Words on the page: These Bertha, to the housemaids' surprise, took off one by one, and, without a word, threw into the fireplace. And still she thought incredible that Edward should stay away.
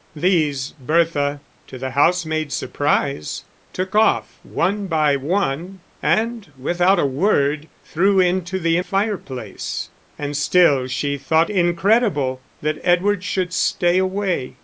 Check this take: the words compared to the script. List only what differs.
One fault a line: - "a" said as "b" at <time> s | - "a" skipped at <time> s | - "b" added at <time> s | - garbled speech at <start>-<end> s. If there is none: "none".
none